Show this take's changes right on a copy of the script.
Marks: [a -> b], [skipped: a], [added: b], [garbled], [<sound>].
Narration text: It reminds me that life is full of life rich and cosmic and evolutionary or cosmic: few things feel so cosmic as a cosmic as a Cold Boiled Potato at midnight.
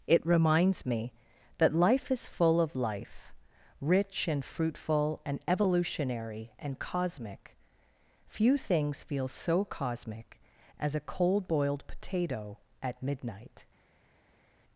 It reminds me that life is full of life rich and [cosmic -> fruitful] and evolutionary [or -> and] cosmic: few things feel so cosmic as a [skipped: cosmic as a] Cold Boiled Potato at midnight.